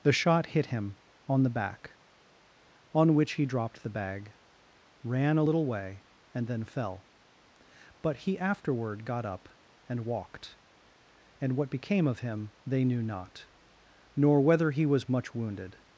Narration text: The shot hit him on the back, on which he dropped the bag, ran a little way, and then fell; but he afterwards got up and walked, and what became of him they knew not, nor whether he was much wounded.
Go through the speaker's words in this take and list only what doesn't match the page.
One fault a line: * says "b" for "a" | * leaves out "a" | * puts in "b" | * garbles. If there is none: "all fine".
* says "afterward" for "afterwards"